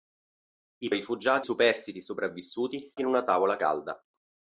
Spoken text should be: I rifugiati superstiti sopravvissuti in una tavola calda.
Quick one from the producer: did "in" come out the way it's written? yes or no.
yes